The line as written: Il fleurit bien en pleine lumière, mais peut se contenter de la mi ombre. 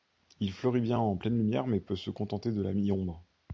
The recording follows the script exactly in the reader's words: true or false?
true